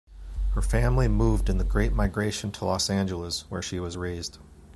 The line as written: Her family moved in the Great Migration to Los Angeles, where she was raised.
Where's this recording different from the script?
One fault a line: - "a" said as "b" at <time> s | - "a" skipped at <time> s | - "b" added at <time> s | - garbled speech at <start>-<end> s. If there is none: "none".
none